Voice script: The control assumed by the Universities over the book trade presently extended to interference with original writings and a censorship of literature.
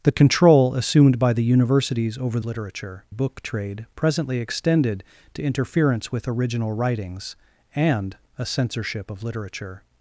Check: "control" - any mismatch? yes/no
no